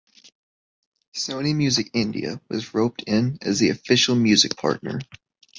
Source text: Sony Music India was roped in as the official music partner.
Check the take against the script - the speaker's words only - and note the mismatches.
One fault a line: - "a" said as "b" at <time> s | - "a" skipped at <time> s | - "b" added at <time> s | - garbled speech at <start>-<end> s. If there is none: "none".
none